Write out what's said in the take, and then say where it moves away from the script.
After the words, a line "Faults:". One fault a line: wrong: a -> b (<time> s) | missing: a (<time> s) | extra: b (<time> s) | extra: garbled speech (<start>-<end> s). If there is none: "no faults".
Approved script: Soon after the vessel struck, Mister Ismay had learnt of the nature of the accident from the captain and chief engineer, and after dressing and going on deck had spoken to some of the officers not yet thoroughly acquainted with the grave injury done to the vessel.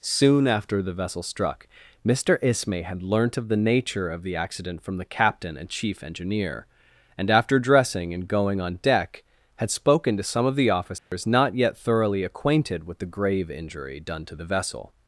Soon after the vessel struck, Mister Ismay had learnt of the nature of the accident from the captain and chief engineer, and after dressing and going on deck had spoken to some of the officers not yet thoroughly acquainted with the grave injury done to the vessel.
Faults:
no faults